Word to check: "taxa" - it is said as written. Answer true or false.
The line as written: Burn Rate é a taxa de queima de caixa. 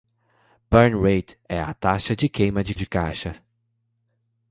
true